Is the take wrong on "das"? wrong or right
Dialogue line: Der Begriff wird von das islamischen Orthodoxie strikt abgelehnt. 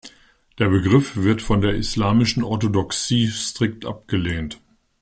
wrong